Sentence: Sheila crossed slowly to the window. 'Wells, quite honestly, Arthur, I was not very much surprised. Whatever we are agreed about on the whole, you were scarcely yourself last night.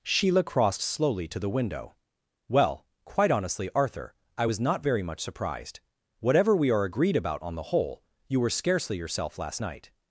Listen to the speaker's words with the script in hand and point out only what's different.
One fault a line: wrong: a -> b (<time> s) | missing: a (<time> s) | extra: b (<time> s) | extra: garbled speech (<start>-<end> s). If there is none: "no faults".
wrong: Wells -> Well (2.5 s)